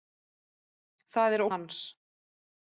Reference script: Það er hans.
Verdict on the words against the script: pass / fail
pass